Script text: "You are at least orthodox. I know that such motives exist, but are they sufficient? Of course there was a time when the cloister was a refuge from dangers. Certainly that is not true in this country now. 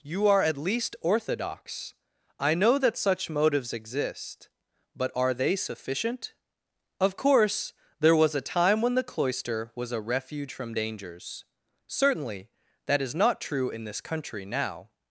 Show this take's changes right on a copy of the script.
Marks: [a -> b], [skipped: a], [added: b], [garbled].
"You are at least orthodox. I know that such motives exist, but are they sufficient? Of course there was a time when the cloister was a refuge from dangers. Certainly that is not true in this country now.